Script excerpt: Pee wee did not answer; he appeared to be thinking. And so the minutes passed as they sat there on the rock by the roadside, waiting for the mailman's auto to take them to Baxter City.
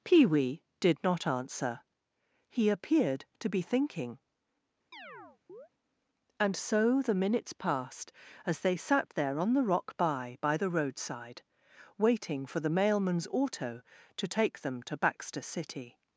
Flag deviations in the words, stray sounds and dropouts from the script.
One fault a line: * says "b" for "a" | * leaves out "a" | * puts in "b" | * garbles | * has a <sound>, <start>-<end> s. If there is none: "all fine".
* has a chirp, 4.9-5.7 s
* puts in "by"